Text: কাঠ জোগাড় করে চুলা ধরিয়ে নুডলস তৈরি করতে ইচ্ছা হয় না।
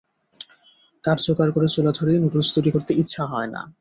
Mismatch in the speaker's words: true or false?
false